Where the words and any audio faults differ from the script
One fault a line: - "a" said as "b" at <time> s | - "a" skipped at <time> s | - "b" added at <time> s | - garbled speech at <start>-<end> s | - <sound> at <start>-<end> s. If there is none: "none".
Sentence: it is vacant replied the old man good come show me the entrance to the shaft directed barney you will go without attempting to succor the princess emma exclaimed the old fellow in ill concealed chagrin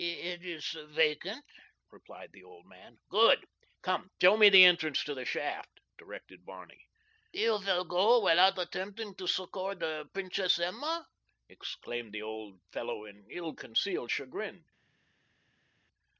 none